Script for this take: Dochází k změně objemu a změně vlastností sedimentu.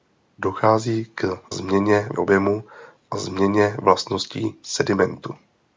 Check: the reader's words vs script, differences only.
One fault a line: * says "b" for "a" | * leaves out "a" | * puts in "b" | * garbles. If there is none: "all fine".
all fine